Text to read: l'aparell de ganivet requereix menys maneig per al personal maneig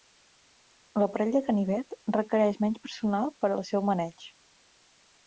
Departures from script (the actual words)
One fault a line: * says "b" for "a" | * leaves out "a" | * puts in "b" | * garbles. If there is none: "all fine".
* says "personal" for "maneig"
* says "seu" for "personal"